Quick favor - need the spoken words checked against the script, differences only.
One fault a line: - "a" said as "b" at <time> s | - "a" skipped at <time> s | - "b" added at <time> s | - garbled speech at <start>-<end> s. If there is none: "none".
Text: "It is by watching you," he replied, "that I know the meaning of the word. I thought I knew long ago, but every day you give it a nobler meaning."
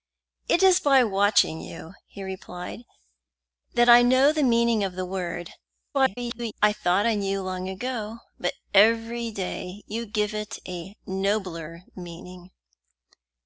- garbled speech at 5.9-6.5 s